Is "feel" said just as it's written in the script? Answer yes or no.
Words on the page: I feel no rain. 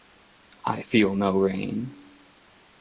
yes